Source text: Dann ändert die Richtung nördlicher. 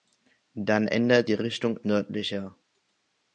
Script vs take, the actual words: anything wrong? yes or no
no